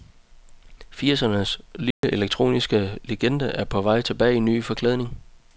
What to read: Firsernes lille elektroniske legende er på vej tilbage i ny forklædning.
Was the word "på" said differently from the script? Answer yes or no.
no